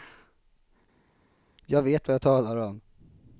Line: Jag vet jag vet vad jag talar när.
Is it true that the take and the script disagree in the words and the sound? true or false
true